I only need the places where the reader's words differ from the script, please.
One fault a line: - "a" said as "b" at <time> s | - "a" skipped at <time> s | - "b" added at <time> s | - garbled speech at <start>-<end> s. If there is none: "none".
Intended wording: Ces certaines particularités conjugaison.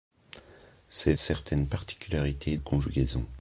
none